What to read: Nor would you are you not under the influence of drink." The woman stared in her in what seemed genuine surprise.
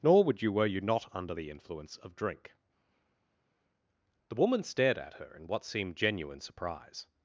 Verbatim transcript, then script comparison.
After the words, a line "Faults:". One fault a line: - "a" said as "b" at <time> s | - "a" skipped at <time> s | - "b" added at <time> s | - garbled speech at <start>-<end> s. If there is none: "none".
Nor would you were you not under the influence of drink." The woman stared at her in what seemed genuine surprise.
Faults:
- "are" said as "were" at 0.5 s
- "in" said as "at" at 5.0 s